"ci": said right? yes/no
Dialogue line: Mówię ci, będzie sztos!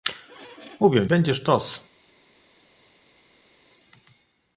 no